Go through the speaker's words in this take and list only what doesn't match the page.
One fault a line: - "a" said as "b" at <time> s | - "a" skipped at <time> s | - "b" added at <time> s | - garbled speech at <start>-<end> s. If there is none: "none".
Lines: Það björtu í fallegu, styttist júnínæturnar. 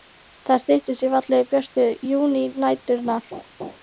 - "björtu" said as "styttist" at 0.6 s
- "styttist" said as "björtu" at 1.5 s